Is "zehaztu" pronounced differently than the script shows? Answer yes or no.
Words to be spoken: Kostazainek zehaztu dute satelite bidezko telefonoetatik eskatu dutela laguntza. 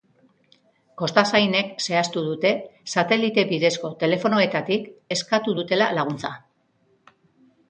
no